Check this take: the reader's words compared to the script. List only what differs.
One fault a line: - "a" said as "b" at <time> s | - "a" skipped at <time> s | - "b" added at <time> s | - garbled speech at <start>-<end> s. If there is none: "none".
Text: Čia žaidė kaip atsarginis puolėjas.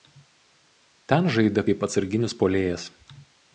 - "Čia" said as "Ten" at 1.1 s